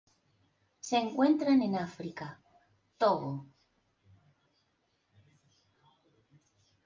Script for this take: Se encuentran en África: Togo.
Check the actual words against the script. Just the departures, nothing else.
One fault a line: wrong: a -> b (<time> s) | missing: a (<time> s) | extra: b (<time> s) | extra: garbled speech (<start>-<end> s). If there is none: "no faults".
no faults